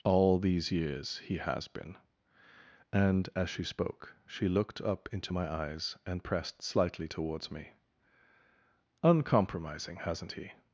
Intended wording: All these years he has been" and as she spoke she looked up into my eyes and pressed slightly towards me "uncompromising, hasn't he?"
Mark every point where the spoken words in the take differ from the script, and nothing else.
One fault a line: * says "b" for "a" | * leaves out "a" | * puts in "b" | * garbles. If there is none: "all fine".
all fine